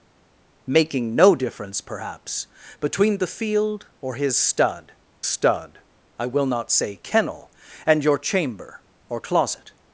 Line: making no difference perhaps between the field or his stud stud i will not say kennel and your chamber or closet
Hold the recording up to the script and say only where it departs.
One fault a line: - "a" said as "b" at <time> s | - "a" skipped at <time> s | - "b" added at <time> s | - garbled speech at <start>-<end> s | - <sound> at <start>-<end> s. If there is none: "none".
none